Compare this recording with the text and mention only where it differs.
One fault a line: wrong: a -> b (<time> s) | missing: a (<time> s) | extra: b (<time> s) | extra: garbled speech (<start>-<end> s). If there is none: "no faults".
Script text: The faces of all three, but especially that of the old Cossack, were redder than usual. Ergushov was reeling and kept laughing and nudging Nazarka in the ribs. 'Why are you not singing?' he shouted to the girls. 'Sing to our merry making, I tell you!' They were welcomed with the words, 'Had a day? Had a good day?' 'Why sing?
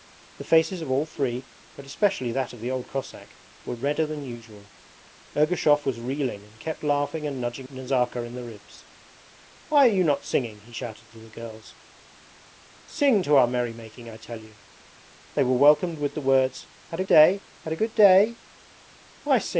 no faults